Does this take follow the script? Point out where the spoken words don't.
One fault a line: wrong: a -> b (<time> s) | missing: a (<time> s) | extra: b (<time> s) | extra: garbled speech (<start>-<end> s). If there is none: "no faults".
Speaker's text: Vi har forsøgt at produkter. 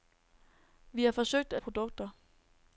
no faults